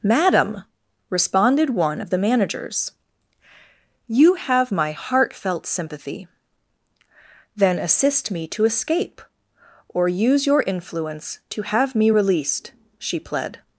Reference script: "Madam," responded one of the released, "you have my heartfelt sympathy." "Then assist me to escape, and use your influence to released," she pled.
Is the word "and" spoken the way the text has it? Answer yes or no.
no